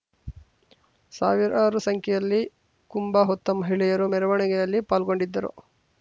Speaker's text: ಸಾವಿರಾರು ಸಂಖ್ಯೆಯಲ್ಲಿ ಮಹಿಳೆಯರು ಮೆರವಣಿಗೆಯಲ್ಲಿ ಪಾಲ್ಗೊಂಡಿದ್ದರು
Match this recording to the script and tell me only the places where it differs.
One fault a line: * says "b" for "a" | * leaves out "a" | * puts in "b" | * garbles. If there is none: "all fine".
* puts in "ಕುಂಭ ಹೊತ್ತ"